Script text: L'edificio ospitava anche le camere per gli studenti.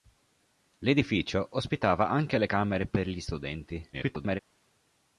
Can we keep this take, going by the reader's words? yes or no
no